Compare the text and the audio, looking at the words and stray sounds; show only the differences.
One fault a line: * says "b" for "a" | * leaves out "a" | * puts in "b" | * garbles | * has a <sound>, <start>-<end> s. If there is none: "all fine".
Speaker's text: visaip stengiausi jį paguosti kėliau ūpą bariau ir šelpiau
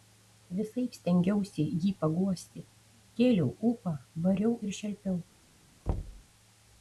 * has a thud, 5.9-6.2 s